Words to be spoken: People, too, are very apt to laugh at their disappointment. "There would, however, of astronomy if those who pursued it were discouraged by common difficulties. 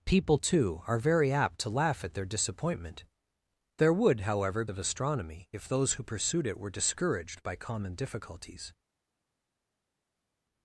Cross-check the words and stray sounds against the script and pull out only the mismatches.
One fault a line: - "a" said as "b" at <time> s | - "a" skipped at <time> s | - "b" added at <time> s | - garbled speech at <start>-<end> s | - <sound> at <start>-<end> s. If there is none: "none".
none